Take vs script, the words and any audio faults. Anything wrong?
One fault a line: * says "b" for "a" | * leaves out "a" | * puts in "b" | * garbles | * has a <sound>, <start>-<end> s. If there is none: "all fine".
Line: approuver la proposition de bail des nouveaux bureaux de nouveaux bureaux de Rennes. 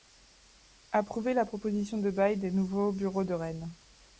* leaves out "nouveaux bureaux de"